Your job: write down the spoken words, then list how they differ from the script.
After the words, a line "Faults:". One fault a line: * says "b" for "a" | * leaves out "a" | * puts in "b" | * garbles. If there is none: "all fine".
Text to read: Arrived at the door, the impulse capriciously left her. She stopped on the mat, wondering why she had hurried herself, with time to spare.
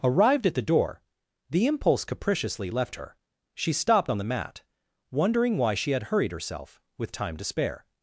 Arrived at the door, the impulse capriciously left her. She stopped on the mat, wondering why she had hurried herself, with time to spare.
Faults:
all fine